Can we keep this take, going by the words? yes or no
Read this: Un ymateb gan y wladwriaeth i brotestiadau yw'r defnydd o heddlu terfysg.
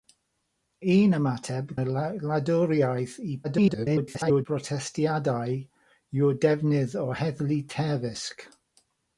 no